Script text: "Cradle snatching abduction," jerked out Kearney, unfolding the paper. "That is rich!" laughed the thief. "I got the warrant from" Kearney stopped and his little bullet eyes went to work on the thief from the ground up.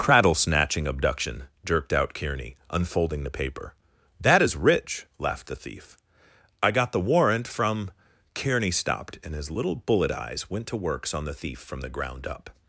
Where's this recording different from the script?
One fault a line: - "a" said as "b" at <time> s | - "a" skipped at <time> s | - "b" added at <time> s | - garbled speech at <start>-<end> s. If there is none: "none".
- "work" said as "works" at 10.8 s